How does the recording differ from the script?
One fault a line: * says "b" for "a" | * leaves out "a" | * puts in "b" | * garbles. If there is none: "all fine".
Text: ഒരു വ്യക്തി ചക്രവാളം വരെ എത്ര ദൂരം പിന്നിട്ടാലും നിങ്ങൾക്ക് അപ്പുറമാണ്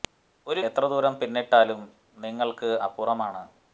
* leaves out "വ്യക്തി ചക്രവാളം വരെ"